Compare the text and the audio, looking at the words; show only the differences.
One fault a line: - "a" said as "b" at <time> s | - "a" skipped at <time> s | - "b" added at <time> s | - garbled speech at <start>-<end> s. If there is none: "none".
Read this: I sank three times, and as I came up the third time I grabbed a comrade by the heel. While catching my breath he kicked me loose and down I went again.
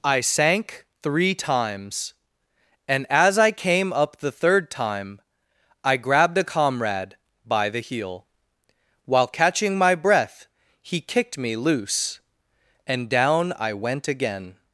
none